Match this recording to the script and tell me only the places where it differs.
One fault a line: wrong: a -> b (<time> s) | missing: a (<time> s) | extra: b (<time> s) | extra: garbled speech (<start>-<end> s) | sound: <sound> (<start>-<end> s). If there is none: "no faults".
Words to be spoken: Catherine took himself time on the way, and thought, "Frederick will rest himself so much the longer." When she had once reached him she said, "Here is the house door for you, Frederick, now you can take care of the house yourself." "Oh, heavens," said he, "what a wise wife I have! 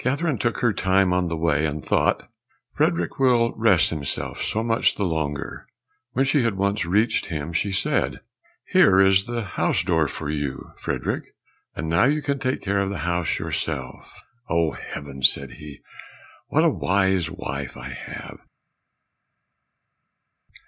wrong: himself -> her (0.6 s)
extra: and (11.8 s)